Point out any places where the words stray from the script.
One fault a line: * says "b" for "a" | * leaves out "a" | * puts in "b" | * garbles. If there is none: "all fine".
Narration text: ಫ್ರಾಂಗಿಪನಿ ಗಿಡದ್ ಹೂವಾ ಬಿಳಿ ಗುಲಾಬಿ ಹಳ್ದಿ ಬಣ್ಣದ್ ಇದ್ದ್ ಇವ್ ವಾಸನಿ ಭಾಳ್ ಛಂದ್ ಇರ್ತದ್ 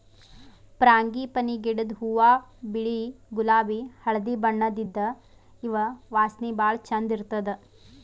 all fine